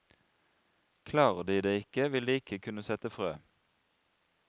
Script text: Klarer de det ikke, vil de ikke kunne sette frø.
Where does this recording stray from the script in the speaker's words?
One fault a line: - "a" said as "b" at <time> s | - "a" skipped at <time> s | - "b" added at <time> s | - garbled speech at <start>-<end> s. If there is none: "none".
none